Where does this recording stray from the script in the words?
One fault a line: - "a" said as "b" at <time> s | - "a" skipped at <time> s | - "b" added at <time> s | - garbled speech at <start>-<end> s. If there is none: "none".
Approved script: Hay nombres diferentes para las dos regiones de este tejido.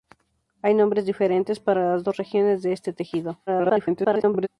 - garbled speech at 3.5-4.5 s